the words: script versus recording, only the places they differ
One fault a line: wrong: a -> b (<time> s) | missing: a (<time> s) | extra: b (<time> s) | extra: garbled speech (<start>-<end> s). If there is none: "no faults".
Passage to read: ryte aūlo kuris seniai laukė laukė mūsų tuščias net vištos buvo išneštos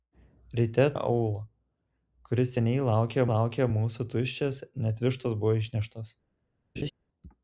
no faults